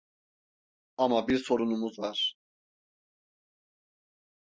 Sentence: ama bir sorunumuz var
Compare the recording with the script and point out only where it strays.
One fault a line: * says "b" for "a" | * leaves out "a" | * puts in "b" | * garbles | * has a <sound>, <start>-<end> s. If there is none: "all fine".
all fine